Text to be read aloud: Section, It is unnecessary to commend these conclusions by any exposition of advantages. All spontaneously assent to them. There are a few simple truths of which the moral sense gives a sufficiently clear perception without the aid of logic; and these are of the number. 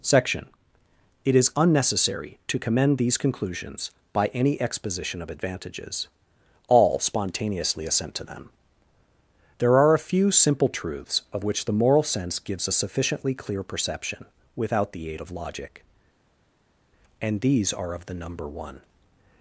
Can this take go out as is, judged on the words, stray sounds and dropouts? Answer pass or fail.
fail